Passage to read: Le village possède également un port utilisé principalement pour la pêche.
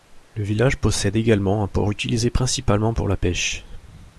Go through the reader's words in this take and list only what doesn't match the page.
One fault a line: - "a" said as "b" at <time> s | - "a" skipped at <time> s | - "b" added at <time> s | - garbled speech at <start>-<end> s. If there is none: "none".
none